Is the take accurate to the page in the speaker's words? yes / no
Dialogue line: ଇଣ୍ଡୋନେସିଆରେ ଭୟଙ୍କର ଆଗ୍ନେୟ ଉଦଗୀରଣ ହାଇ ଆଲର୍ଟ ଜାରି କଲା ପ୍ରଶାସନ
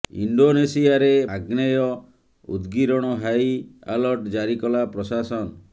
no